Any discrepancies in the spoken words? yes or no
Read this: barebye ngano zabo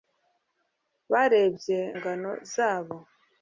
no